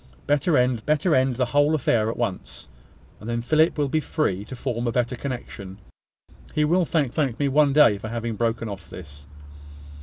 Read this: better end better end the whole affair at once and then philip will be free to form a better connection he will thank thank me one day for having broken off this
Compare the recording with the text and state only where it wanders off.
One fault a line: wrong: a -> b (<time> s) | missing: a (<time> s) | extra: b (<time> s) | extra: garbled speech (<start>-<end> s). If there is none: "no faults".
no faults